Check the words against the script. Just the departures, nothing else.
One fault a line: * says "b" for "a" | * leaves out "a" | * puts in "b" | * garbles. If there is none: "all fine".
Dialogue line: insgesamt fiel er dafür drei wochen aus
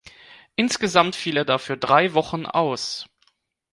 all fine